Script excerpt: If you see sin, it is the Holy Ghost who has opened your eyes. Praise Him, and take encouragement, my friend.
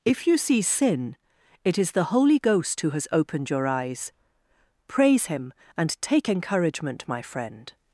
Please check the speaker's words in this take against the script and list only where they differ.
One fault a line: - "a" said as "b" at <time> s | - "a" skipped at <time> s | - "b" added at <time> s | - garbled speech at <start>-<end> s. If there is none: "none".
none